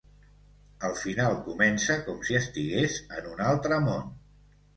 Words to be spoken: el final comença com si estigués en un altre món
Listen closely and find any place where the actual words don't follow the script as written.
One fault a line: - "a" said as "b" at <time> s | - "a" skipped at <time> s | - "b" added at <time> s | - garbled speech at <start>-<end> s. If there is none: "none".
none